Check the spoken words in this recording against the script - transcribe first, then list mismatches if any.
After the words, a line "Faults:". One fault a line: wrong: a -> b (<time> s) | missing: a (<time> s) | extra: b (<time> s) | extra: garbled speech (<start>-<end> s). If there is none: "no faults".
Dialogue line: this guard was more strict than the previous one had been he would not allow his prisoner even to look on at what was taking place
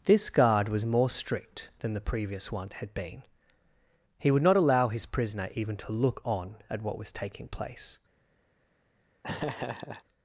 this guard was more strict than the previous one had been he would not allow his prisoner even to look on at what was taking place
Faults:
no faults